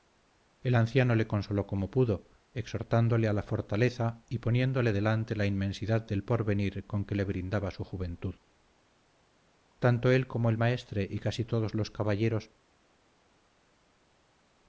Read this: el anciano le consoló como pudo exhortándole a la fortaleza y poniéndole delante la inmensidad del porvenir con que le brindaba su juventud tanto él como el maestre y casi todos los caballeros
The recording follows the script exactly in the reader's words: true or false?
true